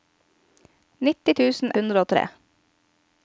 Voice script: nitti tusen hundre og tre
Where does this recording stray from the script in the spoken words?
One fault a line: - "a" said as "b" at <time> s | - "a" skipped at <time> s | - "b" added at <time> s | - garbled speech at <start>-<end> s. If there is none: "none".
none